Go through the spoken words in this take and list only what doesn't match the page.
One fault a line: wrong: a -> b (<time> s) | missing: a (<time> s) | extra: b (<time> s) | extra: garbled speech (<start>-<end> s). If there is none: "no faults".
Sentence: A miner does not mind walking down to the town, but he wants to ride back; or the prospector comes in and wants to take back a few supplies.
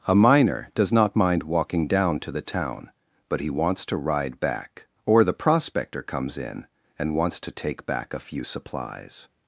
no faults